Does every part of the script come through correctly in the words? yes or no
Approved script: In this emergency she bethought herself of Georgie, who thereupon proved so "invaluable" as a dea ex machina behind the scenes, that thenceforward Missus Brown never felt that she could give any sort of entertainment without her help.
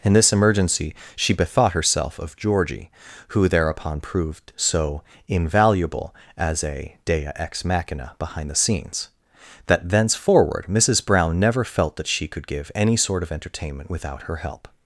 yes